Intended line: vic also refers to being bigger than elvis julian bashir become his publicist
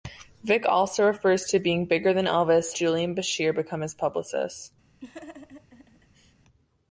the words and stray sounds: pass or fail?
fail